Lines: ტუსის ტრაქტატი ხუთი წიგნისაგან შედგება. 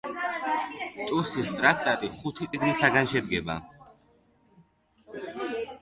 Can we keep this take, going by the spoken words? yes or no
yes